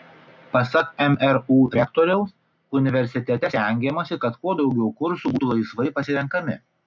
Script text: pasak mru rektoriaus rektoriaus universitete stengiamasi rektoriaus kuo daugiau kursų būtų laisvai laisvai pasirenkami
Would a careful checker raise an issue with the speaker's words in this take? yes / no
yes